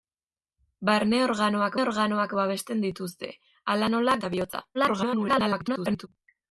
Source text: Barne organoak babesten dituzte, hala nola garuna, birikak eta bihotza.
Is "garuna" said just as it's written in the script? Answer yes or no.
no